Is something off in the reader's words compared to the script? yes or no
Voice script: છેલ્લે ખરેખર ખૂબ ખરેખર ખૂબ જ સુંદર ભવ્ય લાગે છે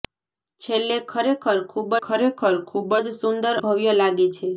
no